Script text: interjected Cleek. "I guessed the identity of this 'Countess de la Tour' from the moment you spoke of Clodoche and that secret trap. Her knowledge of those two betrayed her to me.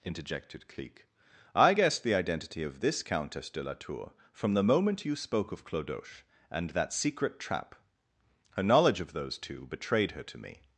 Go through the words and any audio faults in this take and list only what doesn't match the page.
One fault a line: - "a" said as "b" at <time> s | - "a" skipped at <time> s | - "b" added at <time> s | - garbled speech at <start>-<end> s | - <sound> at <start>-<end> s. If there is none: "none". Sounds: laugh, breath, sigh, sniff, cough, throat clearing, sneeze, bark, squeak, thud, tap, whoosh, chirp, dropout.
none